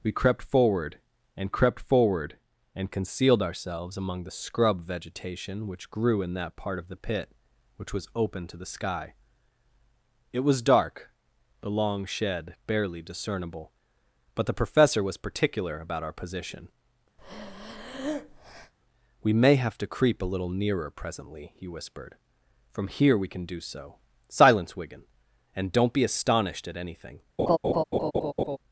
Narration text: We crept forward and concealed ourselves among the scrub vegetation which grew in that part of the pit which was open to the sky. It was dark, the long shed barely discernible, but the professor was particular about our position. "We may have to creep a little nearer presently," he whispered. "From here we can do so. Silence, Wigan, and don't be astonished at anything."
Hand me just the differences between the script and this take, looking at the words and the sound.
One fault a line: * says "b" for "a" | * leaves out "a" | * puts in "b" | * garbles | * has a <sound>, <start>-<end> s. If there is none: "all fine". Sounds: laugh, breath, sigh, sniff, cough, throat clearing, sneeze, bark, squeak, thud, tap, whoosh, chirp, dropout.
* puts in "crept forward and"
* has a breath, 17.2-18.7 s
* has a laugh, 27.4-28.6 s